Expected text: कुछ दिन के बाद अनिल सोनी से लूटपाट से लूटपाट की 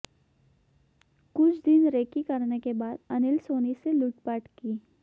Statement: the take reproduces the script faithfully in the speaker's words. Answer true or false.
false